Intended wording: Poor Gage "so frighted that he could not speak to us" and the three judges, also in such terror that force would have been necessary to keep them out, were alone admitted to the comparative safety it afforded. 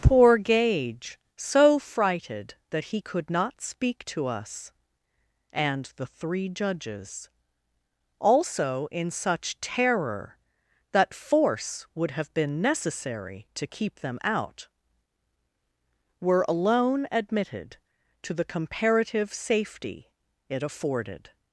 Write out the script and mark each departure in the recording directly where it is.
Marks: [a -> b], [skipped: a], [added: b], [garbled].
Poor Gage "so frighted that he could not speak to us" and the three judges, also in such terror that force would have been necessary to keep them out, were alone admitted to the comparative safety it afforded.